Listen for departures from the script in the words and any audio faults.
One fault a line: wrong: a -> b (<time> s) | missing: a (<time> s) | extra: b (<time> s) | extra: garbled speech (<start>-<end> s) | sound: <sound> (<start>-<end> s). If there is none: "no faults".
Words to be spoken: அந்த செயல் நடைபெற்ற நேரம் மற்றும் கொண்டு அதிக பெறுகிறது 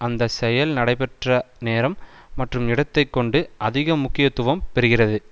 extra: இடத்தை (2.7 s)
extra: முக்கியத்துவம் (4.0 s)